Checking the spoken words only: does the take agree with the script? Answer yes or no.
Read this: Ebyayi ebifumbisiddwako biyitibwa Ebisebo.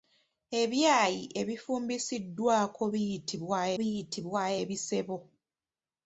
no